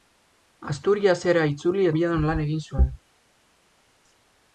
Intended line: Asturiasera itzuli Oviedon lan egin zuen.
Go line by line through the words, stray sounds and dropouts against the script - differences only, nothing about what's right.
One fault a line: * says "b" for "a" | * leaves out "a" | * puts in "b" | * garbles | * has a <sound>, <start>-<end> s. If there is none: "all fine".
all fine